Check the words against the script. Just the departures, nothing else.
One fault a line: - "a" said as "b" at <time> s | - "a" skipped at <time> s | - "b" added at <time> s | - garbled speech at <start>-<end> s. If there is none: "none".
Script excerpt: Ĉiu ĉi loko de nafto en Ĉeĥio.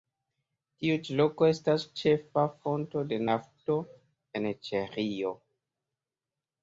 - "Ĉiu" said as "Tiu" at 0.8 s
- "estas ĉefa fonto" added at 1.5 s